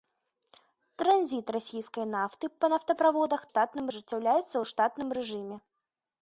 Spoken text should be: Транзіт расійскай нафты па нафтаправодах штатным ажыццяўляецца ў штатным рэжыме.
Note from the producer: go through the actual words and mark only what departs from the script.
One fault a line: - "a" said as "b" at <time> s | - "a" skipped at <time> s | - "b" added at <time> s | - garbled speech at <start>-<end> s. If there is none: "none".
none